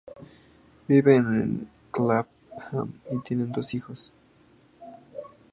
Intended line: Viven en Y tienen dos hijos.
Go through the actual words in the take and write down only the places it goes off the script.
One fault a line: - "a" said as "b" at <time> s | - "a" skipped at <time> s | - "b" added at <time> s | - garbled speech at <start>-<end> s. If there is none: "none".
- "Clapham" added at 1.9 s